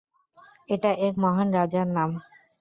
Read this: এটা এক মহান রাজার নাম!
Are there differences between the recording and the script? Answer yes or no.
no